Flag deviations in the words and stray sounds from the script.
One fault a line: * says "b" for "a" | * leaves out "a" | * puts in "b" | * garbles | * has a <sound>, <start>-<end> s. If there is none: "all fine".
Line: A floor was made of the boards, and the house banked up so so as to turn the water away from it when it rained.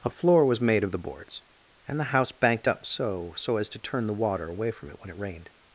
all fine